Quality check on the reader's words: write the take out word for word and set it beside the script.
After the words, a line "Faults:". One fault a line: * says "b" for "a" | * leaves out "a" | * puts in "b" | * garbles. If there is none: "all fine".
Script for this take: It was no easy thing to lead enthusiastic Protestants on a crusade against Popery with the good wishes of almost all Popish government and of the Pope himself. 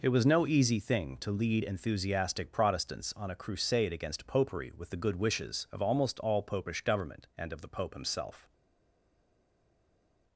It was no easy thing to lead enthusiastic Protestants on a crusade against Popery with the good wishes of almost all Popish government and of the Pope himself.
Faults:
all fine